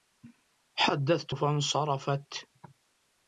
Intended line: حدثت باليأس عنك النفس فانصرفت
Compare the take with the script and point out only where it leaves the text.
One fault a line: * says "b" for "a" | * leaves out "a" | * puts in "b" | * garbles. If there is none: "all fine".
* leaves out "باليأس عنك النفس"